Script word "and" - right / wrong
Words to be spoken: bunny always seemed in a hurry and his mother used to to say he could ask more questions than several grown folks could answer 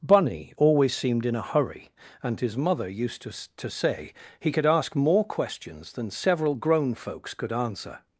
right